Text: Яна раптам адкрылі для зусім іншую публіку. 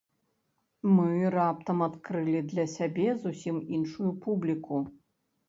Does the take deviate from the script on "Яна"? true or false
true